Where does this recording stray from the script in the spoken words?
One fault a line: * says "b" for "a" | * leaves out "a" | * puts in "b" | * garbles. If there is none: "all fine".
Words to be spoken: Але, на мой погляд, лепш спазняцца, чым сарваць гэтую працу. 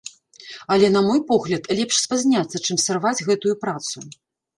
all fine